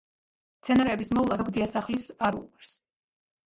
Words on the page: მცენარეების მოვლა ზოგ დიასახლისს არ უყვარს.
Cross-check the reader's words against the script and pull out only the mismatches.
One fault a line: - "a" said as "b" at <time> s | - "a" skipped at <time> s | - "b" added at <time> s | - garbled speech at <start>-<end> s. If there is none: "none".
none